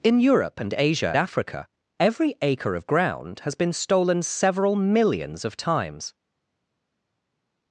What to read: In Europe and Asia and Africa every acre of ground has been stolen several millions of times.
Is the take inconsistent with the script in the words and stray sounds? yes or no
yes